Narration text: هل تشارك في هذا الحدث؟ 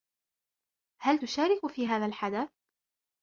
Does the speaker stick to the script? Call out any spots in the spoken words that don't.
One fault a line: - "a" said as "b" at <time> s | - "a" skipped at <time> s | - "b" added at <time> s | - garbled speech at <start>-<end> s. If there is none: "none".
none